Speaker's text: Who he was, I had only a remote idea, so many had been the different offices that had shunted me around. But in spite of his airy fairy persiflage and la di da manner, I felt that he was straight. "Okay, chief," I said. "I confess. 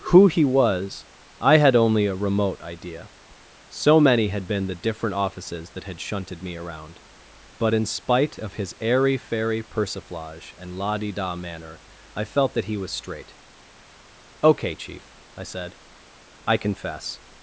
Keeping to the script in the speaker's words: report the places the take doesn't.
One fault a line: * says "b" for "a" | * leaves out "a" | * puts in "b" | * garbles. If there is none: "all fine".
all fine